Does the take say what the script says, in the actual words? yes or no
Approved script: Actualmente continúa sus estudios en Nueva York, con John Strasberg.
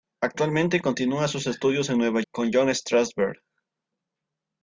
no